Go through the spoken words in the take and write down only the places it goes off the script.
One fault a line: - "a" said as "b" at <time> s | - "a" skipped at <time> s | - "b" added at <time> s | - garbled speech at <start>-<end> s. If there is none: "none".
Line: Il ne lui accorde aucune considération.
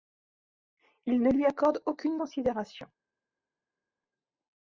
none